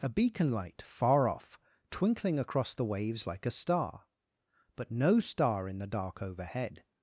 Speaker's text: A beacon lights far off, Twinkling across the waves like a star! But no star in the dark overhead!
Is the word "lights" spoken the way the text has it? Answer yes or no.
no